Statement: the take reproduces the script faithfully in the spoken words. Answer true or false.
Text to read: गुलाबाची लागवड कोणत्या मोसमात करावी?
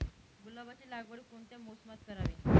true